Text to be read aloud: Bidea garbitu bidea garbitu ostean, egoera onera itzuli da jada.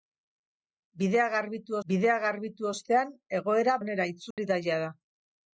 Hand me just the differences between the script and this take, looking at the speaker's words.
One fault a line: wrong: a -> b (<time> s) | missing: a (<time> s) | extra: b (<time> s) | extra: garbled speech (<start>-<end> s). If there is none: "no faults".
no faults